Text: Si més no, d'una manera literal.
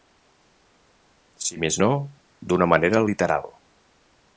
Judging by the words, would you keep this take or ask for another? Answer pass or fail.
pass